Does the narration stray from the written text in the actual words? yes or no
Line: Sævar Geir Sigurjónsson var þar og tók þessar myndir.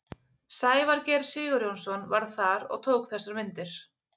no